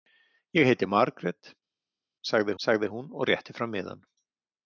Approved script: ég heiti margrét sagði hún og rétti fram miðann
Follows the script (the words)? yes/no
no